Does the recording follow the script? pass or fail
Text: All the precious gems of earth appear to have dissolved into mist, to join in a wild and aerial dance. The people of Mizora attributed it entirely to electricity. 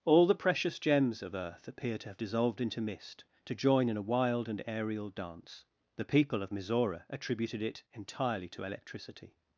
pass